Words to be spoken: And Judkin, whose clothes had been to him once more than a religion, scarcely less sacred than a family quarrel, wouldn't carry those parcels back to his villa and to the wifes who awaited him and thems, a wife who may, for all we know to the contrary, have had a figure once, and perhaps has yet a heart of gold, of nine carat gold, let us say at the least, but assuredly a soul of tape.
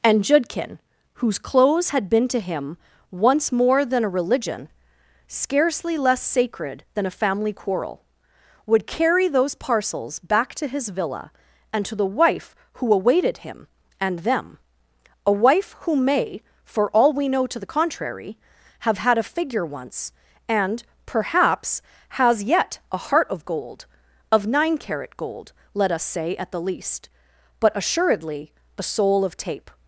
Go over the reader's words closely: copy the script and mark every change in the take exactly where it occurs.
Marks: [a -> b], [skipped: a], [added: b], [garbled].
And Judkin, whose clothes had been to him once more than a religion, scarcely less sacred than a family quarrel, [wouldn't -> would] carry those parcels back to his villa and to the [wifes -> wife] who awaited him and [thems, -> them] a wife who may, for all we know to the contrary, have had a figure once, and perhaps has yet a heart of gold, of nine carat gold, let us say at the least, but assuredly a soul of tape.